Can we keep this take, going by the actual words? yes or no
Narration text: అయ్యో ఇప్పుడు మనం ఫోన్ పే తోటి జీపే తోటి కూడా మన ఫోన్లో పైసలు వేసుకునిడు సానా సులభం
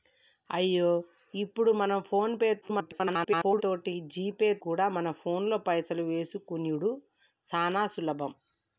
no